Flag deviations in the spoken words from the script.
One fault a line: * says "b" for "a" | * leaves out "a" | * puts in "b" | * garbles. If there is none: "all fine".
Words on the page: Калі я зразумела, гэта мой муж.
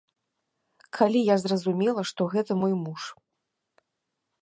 * puts in "што"